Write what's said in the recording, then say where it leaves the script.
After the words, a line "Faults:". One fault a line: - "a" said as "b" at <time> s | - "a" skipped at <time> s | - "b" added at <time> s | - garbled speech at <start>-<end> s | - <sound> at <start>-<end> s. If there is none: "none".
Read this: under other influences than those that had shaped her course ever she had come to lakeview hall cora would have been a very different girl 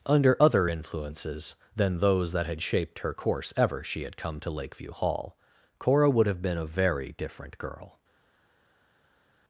under other influences than those that had shaped her course ever she had come to lakeview hall cora would have been a very different girl
Faults:
none